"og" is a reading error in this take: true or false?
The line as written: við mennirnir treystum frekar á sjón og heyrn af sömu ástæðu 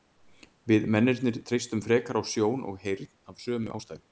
false